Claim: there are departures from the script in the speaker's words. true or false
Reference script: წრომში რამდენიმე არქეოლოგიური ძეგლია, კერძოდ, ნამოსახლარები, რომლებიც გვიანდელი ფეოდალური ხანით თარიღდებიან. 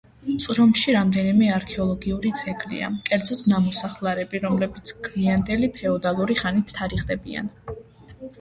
false